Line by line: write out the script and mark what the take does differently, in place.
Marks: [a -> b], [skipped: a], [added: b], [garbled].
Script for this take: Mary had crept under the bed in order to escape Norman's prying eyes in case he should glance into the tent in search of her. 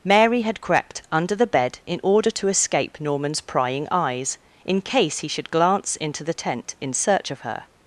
Mary had crept under the bed in order to escape Norman's prying eyes in case he should glance into the tent in search of her.